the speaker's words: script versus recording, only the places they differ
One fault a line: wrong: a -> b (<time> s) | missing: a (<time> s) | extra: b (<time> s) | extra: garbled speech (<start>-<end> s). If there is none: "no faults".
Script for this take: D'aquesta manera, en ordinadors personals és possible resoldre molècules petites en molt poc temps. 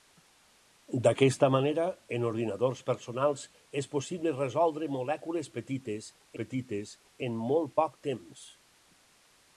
extra: petites (6.4 s)